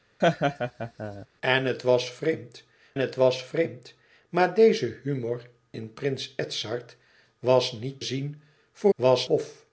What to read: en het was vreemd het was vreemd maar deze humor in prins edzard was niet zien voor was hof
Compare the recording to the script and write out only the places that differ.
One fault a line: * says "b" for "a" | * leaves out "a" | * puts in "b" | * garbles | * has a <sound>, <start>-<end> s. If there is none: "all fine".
* has a laugh, 0.2-1.3 s